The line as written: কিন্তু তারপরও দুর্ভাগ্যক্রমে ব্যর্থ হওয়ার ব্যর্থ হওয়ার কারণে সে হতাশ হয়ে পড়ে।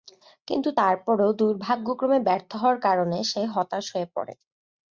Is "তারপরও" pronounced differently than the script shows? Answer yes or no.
no